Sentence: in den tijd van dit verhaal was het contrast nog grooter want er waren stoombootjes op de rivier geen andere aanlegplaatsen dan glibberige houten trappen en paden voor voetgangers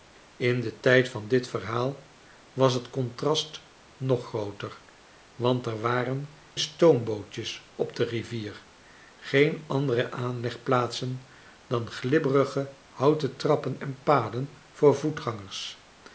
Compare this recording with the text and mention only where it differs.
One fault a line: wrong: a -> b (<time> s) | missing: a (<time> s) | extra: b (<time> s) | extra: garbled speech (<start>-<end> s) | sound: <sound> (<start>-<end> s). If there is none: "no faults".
no faults